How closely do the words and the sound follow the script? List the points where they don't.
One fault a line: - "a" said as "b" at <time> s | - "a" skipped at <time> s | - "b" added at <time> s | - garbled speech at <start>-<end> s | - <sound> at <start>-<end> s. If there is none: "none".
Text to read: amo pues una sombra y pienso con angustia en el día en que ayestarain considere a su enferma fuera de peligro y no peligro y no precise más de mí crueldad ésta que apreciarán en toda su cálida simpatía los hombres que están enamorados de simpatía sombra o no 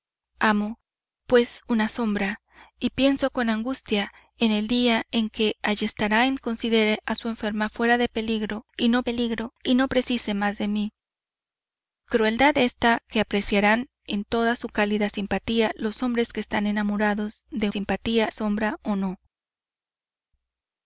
none